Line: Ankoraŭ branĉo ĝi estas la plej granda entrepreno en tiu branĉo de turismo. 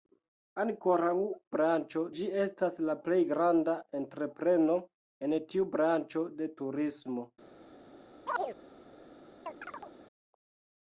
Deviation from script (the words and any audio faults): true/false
true